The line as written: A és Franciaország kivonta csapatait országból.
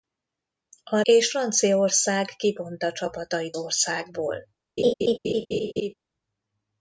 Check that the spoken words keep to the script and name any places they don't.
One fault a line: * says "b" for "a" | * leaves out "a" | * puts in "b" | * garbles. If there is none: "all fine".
all fine